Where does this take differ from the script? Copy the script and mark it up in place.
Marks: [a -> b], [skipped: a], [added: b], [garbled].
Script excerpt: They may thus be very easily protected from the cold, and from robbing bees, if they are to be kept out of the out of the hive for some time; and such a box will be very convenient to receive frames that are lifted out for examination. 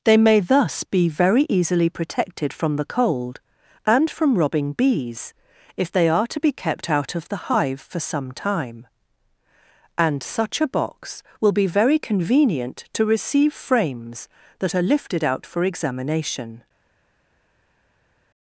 They may thus be very easily protected from the cold, and from robbing bees, if they are to be kept out of the [skipped: out of the] hive for some time; and such a box will be very convenient to receive frames that are lifted out for examination.